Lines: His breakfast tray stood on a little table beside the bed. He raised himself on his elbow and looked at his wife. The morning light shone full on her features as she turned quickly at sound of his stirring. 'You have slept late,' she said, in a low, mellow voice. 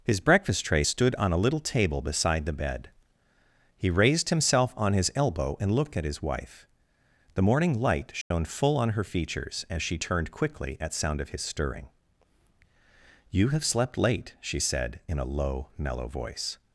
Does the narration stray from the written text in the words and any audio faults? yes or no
yes